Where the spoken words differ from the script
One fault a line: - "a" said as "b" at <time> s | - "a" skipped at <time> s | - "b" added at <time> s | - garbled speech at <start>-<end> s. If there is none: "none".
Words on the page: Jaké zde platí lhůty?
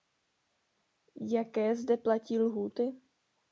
none